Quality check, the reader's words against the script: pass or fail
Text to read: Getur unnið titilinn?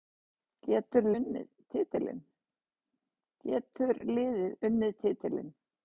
pass